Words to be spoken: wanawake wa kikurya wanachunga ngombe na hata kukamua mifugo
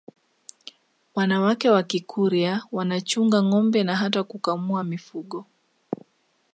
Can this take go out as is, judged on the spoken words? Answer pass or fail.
pass